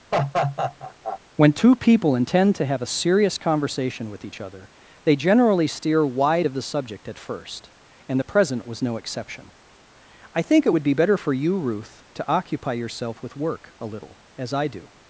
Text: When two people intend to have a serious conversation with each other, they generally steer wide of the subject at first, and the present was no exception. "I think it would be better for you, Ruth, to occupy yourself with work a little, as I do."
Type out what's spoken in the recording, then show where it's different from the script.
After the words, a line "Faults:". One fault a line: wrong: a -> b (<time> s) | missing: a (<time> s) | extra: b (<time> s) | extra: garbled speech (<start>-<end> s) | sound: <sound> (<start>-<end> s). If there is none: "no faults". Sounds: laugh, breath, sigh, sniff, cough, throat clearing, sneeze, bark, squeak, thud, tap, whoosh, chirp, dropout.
When two people intend to have a serious conversation with each other, they generally steer wide of the subject at first, and the present was no exception. "I think it would be better for you, Ruth, to occupy yourself with work a little, as I do."
Faults:
sound: laugh (0.1-1.2 s)